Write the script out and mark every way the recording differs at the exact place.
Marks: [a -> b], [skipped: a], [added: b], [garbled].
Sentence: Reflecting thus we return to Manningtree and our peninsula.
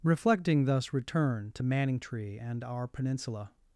Reflecting thus [skipped: we] return to Manningtree and our peninsula.